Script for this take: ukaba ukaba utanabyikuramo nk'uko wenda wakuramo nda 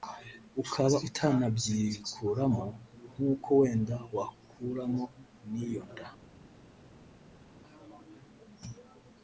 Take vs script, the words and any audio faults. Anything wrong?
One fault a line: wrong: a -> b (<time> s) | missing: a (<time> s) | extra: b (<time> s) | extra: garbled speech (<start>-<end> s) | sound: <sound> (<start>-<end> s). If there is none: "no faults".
missing: ukaba (1.0 s)
extra: n'iyo (5.5 s)